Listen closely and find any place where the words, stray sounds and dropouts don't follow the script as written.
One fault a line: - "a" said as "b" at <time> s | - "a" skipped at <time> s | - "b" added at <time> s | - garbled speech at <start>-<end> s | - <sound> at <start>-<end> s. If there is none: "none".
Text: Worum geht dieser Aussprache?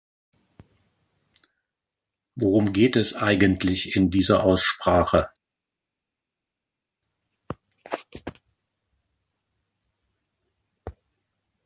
- "es eigentlich in" added at 3.0 s